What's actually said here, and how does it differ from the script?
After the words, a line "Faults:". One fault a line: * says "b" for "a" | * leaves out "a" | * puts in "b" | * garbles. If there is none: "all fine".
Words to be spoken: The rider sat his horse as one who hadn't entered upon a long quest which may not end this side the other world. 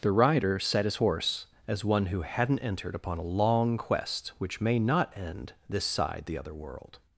The rider sat his horse as one who hadn't entered upon a long quest which may not end this side the other world.
Faults:
all fine